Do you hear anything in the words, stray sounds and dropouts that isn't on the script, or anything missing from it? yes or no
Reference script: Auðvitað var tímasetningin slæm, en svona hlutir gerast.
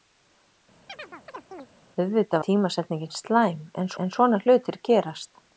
yes